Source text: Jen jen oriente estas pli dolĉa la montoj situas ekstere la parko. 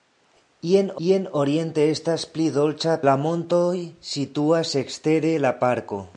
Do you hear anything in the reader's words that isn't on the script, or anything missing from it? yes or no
no